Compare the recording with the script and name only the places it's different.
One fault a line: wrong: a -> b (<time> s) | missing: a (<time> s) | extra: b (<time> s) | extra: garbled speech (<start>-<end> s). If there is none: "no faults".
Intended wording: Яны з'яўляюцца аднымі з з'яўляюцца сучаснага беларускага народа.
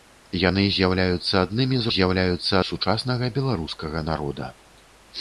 no faults